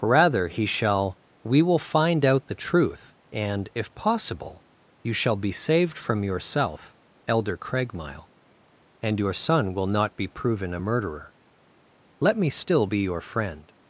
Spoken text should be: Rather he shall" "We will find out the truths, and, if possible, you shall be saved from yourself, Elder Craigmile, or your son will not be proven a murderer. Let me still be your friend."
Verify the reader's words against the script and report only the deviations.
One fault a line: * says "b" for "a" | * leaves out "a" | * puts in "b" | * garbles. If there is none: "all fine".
* says "truth" for "truths"
* says "and" for "or"